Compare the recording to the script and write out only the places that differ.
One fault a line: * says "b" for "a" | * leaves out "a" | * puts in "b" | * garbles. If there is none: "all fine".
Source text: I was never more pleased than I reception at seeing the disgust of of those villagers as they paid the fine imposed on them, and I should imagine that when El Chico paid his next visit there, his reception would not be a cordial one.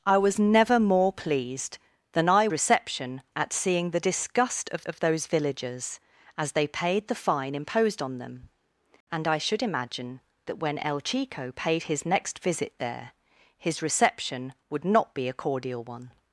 all fine